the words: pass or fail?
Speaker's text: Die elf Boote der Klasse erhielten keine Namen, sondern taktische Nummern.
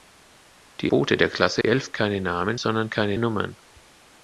fail